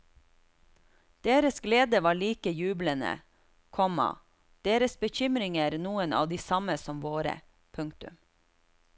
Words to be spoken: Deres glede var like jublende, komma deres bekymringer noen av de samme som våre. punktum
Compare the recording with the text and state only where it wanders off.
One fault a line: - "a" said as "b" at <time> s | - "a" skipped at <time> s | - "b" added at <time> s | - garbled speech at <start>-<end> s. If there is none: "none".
none